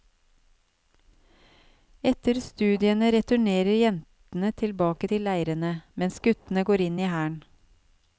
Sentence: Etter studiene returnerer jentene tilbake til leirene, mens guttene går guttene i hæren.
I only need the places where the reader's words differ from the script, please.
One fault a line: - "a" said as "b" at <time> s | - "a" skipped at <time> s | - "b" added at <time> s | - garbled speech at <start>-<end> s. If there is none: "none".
- "guttene" said as "inn" at 6.9 s